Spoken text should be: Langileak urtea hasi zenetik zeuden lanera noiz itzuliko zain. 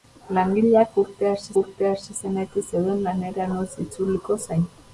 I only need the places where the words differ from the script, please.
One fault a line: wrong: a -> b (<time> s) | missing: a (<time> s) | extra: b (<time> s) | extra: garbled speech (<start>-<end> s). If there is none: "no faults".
extra: urtea hasi (1.6 s)